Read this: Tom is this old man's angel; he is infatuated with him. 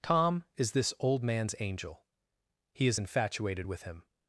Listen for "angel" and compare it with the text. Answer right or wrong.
right